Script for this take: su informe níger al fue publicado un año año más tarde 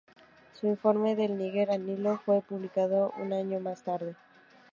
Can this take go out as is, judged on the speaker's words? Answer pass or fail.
fail